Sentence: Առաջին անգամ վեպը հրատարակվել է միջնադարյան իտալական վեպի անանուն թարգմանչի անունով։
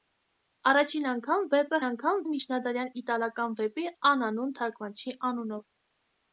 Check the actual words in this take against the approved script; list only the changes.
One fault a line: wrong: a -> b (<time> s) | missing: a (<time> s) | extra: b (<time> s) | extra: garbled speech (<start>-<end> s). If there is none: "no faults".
wrong: հրատարակվել -> անգամ (1.9 s)